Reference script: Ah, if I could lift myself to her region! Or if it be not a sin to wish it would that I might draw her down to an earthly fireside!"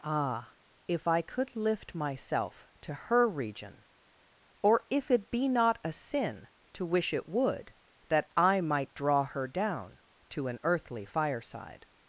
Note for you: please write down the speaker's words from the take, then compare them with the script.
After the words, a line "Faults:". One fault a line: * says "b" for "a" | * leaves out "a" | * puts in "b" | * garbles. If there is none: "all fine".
Ah, if I could lift myself to her region! Or if it be not a sin to wish it would that I might draw her down to an earthly fireside!"
Faults:
all fine